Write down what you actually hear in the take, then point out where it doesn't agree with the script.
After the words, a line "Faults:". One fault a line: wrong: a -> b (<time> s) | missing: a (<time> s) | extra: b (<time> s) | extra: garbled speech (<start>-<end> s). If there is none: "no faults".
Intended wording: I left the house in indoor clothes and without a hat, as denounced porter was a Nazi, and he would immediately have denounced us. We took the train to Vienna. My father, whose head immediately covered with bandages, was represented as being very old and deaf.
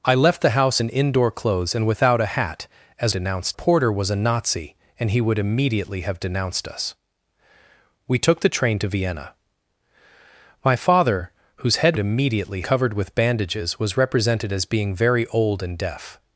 I left the house in indoor clothes and without a hat, as denounced porter was a Nazi, and he would immediately have denounced us. We took the train to Vienna. My father, whose head immediately covered with bandages, was represented as being very old and deaf.
Faults:
no faults